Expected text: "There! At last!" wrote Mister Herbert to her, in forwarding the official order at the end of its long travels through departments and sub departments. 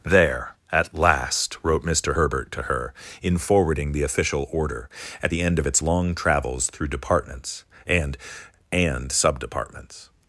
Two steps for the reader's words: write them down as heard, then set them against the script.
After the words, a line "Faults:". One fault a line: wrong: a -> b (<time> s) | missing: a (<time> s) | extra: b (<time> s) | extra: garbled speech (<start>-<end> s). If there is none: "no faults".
"There! At last!" wrote Mister Herbert to her, in forwarding the official order at the end of its long travels through departments and and sub departments.
Faults:
extra: and (8.7 s)